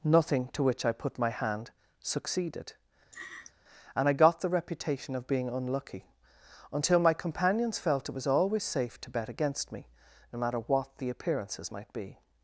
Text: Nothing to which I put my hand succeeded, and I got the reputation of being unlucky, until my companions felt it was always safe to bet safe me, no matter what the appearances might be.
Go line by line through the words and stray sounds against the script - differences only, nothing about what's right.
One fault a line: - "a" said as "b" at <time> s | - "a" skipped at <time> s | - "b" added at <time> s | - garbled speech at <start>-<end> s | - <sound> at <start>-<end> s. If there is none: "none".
- laugh at 3.1-3.5 s
- "safe" said as "against" at 9.3 s